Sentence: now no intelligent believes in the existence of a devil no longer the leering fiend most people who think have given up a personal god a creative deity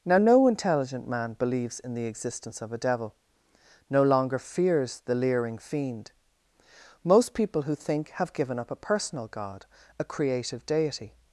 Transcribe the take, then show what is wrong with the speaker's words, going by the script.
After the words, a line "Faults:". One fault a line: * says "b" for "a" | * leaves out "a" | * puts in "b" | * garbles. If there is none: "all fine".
now no intelligent man believes in the existence of a devil no longer fears the leering fiend most people who think have given up a personal god a creative deity
Faults:
* puts in "man"
* puts in "fears"